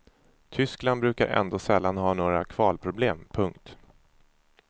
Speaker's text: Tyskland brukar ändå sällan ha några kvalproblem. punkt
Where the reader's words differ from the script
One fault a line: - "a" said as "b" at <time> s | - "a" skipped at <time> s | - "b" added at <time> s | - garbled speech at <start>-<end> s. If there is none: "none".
none